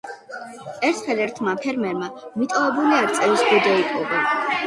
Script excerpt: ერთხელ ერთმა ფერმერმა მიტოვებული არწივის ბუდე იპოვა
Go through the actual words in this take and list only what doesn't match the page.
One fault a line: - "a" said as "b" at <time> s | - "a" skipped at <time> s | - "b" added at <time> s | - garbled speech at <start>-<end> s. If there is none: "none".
none